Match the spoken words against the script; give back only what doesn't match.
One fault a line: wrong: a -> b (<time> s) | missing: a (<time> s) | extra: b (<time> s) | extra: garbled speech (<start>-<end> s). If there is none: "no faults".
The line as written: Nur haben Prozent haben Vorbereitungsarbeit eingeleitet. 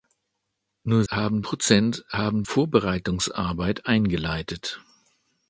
no faults